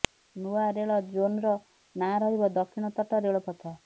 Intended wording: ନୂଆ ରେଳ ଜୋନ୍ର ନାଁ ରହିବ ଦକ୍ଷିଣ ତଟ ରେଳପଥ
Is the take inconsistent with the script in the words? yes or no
no